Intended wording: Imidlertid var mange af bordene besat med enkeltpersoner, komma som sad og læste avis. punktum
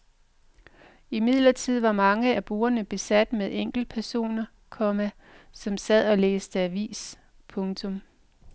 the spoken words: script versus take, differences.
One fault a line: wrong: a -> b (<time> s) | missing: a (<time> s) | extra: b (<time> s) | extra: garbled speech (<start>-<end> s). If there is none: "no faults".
no faults